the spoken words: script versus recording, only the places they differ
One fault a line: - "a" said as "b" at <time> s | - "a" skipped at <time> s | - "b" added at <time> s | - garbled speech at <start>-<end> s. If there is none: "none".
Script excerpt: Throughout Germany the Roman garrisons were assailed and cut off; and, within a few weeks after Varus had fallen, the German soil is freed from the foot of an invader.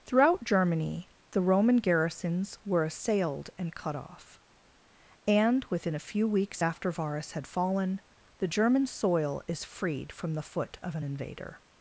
none